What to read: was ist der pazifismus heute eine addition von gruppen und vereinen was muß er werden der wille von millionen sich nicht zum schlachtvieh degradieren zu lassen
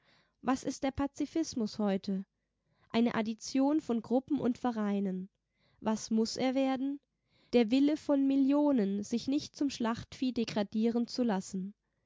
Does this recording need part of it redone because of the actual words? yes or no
no